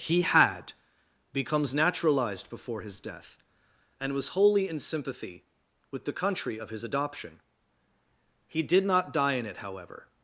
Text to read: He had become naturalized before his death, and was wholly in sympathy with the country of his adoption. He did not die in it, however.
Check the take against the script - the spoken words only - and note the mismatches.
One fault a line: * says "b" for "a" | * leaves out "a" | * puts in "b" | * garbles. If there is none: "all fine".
* says "becomes" for "become"